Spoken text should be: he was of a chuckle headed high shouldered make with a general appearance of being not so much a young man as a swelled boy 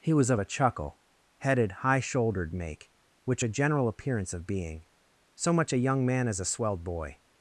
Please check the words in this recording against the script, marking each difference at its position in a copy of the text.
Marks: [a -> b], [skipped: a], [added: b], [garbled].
he was of a chuckle headed high shouldered make [with -> which] a general appearance of being [skipped: not] so much a young man as a swelled boy